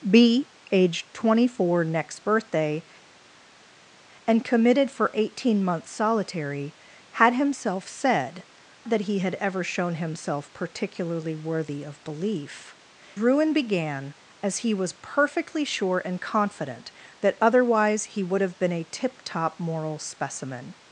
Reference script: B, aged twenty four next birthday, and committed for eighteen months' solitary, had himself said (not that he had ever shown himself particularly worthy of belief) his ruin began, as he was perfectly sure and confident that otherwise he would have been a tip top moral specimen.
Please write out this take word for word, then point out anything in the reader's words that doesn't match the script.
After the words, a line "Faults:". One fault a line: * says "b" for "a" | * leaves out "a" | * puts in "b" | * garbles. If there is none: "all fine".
B, aged twenty four next birthday, and committed for eighteen months' solitary, had himself said (that he had ever shown himself particularly worthy of belief) ruin began, as he was perfectly sure and confident that otherwise he would have been a tip top moral specimen.
Faults:
* leaves out "not"
* leaves out "his"